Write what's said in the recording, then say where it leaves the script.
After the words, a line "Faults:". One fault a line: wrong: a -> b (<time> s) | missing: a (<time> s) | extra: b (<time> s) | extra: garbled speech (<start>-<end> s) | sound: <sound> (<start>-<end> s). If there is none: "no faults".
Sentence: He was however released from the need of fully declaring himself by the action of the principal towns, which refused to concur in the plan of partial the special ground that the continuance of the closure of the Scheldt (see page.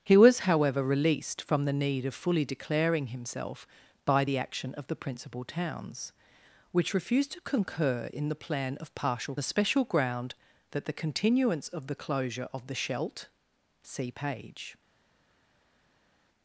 He was however released from the need of fully declaring himself by the action of the principal towns, which refused to concur in the plan of partial the special ground that the continuance of the closure of the Scheldt (see page.
Faults:
no faults